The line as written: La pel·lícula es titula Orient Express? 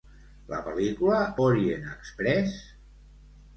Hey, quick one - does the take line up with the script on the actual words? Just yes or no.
no